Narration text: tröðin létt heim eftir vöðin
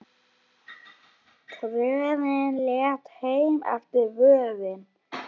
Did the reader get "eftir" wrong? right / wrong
right